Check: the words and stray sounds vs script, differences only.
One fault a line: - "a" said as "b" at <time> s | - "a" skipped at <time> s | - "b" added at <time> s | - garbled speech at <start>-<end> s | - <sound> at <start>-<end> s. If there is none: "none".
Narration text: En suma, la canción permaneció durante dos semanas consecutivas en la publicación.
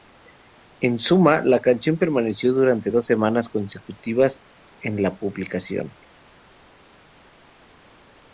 none